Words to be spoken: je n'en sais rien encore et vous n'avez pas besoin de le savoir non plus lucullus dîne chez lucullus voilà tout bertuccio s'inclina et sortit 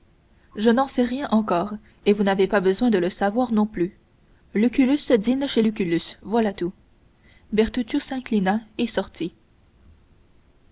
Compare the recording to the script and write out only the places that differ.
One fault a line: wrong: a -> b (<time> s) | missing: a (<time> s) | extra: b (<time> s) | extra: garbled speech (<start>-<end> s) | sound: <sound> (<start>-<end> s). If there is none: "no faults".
no faults